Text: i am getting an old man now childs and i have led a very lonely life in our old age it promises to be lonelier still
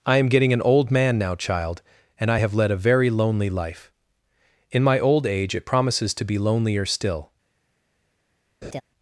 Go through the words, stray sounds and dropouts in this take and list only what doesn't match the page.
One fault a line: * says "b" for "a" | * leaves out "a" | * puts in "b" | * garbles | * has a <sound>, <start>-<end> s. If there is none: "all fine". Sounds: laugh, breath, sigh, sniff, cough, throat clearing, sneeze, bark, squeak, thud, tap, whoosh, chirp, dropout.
* says "child" for "childs"
* says "my" for "our"
* has a laugh, 8.6-8.8 s